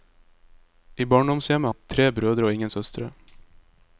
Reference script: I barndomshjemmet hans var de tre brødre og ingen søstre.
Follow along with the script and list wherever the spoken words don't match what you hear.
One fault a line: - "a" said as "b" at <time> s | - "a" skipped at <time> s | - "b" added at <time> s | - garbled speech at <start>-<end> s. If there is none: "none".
- "hans var" skipped at 1.7 s